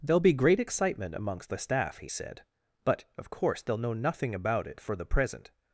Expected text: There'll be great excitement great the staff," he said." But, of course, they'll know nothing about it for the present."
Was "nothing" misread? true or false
false